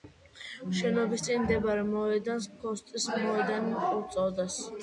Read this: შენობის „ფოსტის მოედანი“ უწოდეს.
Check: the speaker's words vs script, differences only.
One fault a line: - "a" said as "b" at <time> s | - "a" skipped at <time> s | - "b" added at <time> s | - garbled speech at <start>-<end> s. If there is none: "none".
- "წინ მდებარე მოედანს" added at 1.2 s